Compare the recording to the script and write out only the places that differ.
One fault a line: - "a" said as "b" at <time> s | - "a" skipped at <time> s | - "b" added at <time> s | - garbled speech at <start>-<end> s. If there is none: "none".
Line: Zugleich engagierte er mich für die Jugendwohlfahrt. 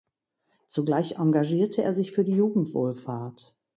- "mich" said as "sich" at 1.9 s